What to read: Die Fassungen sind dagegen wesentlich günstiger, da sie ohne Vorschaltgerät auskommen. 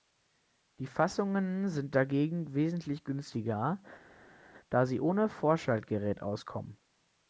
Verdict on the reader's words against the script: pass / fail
pass